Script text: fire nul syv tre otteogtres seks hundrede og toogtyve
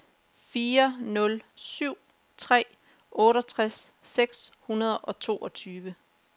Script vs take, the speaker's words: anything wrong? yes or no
no